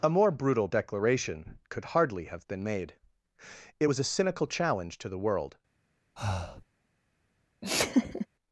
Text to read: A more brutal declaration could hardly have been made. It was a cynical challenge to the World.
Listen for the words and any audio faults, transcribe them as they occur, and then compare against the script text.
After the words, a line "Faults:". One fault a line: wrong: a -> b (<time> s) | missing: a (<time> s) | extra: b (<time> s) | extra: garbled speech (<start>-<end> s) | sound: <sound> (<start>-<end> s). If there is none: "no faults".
A more brutal declaration could hardly have been made. It was a cynical challenge to the World.
Faults:
sound: breath (6.2-6.7 s)
sound: laugh (7.6-8.3 s)